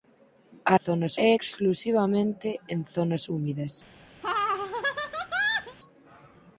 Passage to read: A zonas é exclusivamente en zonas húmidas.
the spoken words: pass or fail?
pass